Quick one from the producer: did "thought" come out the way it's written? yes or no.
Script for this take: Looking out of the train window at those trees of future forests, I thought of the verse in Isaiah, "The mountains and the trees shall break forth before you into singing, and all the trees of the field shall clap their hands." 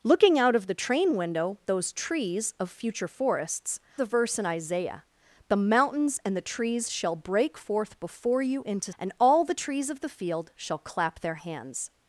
no